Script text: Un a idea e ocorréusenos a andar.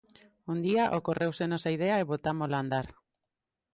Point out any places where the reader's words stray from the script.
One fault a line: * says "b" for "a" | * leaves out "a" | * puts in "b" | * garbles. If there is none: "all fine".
* puts in "día ocorréusenos"
* says "botámola" for "ocorréusenos"